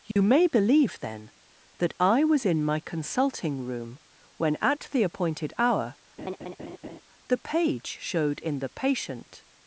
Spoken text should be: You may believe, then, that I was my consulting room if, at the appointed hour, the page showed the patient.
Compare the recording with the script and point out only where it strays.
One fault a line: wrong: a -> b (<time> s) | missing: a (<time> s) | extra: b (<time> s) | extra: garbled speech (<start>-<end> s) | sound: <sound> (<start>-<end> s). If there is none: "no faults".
sound: dropout (0.1-0.2 s)
extra: in (2.4 s)
wrong: if -> when (4.4 s)
sound: laugh (6.2-7.0 s)
extra: in (8.4 s)